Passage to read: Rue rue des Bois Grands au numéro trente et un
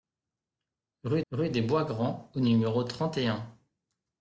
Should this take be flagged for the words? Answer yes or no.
no